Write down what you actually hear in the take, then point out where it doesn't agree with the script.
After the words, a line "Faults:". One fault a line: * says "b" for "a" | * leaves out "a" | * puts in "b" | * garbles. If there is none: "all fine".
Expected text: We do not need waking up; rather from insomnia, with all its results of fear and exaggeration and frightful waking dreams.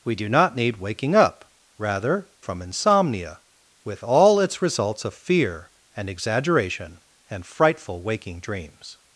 We do not need waking up; rather from insomnia, with all its results of fear and exaggeration and frightful waking dreams.
Faults:
all fine